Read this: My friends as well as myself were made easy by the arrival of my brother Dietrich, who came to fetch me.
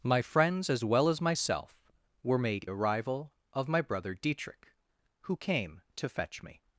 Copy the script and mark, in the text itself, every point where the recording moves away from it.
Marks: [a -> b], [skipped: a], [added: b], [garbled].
My friends as well as myself were made [skipped: easy by the] arrival of my brother Dietrich, who came to fetch me.